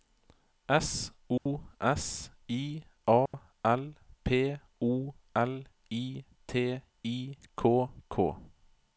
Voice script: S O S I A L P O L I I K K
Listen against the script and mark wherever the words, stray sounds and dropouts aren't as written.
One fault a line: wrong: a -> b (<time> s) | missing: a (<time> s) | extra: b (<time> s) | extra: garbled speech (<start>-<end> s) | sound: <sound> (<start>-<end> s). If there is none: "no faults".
sound: dropout (1.4-1.5 s)
sound: dropout (3.3-3.3 s)
extra: T (6.5 s)